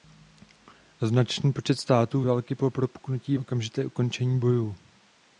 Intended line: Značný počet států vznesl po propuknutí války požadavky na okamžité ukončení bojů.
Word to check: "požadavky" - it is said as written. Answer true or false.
false